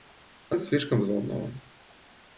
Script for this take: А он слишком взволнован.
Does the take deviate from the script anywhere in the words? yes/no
no